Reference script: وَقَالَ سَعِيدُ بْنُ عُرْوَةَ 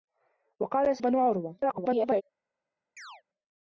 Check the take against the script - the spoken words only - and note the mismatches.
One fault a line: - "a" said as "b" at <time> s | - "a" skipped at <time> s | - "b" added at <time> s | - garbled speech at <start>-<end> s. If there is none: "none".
- "سَعِيدُ" skipped at 1.0 s
- garbled speech at 1.6-2.2 s